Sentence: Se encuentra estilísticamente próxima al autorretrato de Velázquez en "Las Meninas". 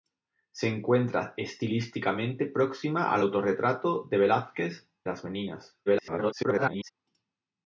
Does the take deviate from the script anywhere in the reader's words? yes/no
yes